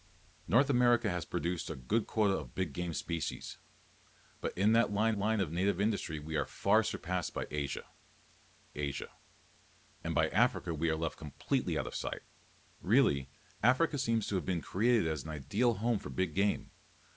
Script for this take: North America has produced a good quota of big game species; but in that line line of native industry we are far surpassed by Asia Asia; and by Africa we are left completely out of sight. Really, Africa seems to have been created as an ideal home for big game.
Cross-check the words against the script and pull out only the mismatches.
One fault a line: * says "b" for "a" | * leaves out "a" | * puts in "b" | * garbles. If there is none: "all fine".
all fine